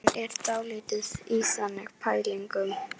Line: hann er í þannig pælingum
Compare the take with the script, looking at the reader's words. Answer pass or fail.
fail